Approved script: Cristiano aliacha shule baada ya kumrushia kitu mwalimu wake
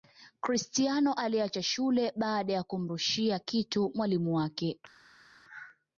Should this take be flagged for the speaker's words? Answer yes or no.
no